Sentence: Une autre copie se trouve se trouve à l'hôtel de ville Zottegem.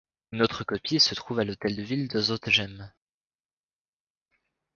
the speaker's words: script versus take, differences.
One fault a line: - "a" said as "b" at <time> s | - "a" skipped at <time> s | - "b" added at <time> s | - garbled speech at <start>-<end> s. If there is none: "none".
- "se trouve" skipped at 1.4 s
- "de" added at 2.1 s